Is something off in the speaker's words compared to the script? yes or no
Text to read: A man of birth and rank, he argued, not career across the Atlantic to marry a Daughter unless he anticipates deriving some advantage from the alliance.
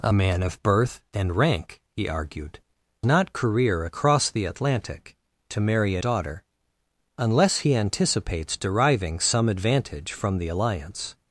no